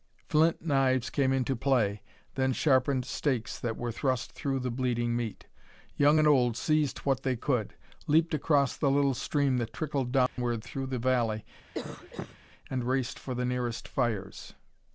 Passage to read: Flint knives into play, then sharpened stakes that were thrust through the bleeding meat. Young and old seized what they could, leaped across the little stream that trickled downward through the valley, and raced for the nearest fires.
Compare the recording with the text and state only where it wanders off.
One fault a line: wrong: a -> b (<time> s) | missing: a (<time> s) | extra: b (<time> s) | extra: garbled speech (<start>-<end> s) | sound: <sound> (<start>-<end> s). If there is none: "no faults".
extra: came (1.1 s)
sound: dropout (10.3-10.4 s)
sound: cough (11.7-12.4 s)